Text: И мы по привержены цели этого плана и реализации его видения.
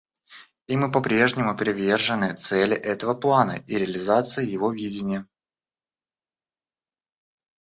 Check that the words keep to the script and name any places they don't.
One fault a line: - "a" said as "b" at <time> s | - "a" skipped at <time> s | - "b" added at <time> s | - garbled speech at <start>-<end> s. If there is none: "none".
- "прежнему" added at 1.0 s